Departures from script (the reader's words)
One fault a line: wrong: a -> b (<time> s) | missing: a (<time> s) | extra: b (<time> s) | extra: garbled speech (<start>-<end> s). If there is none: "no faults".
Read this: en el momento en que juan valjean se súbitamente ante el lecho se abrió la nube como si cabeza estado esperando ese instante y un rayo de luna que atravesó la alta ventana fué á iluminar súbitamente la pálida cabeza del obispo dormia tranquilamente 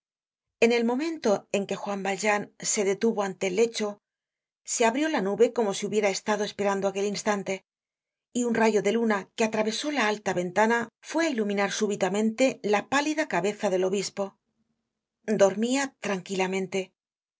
wrong: súbitamente -> detuvo (2.9 s)
wrong: cabeza -> hubiera (5.9 s)
wrong: ese -> aquel (6.9 s)